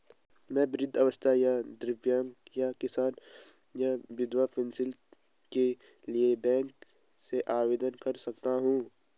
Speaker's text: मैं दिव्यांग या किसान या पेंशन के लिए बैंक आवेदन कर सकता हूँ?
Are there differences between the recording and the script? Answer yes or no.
yes